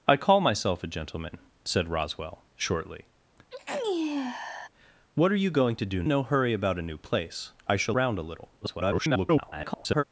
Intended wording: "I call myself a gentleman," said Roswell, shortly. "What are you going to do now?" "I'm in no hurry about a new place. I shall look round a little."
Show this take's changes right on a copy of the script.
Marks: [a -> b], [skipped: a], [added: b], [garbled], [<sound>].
"I call myself a gentleman," said Roswell, shortly. [sneeze] "What are you going to do [skipped: now?" "I'm in] no hurry about a new place. I shall [skipped: look] round a little." [garbled]